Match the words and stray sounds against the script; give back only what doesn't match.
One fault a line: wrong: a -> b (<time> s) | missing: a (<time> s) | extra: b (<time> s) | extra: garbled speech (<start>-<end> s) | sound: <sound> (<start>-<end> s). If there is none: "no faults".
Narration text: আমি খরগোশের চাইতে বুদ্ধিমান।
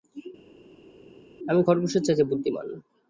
no faults